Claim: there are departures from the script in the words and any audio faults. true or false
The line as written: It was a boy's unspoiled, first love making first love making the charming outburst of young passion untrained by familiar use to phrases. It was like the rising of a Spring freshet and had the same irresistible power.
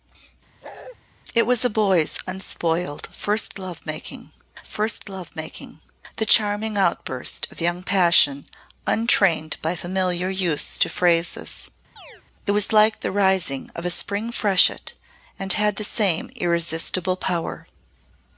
true